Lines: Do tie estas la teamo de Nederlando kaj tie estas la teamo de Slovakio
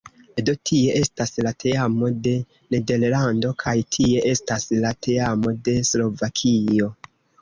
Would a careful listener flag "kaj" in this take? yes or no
no